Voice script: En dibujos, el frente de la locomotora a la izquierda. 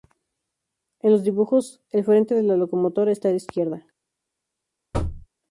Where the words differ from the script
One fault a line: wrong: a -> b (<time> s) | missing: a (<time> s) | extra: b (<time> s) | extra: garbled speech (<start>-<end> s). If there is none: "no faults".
extra: los (1.1 s)
extra: está (3.1 s)